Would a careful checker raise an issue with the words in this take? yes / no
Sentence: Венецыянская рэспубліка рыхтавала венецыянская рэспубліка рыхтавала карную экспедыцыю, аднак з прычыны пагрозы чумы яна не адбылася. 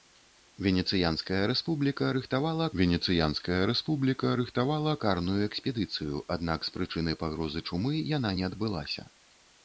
no